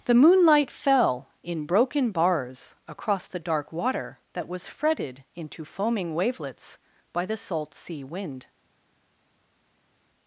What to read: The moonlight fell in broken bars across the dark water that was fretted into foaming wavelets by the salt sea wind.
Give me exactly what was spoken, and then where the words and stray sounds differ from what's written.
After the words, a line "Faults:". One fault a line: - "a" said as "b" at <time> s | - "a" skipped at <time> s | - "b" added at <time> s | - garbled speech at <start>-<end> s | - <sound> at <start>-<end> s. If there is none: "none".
The moonlight fell in broken bars across the dark water that was fretted into foaming wavelets by the salt sea wind.
Faults:
none